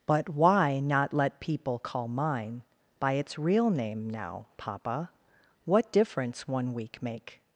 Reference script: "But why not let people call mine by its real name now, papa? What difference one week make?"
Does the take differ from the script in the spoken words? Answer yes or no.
no